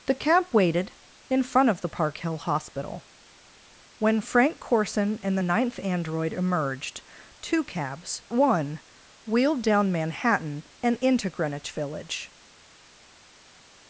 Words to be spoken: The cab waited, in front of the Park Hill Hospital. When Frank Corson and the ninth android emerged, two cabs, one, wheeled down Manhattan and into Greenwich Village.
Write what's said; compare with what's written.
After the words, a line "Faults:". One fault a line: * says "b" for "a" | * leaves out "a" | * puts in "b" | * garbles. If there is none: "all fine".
The cab waited, in front of the Park Hill Hospital. When Frank Corson and the ninth android emerged, two cabs, one, wheeled down Manhattan and into Greenwich Village.
Faults:
all fine